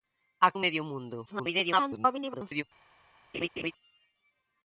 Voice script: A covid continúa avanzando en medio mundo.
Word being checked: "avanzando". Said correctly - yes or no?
no